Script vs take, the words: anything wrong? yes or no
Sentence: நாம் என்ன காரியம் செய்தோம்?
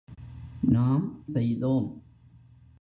yes